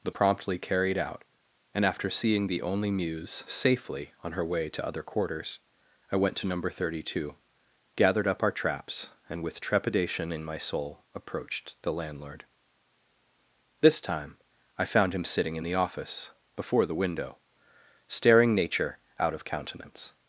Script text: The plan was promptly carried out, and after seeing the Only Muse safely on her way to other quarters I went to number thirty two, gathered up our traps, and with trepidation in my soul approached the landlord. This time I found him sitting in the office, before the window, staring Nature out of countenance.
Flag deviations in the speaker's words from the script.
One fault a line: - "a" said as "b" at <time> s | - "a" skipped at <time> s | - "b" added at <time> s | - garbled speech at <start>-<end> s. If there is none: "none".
- "plan was" skipped at 0.1 s